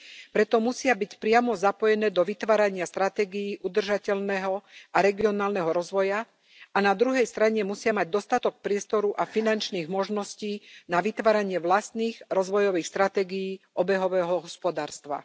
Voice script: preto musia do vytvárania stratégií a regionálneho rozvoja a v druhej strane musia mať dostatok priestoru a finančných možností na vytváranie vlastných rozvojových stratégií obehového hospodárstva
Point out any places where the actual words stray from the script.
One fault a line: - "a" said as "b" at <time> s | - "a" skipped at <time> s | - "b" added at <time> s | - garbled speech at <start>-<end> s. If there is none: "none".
- "byť priamo zapojené" added at 0.9 s
- "udržateľného" added at 3.6 s
- "v" said as "na" at 6.8 s